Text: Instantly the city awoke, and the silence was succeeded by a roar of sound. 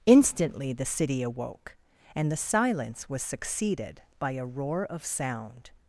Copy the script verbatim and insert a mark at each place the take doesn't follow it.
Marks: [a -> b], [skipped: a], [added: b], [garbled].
Instantly the city awoke, and the silence was succeeded by a roar of sound.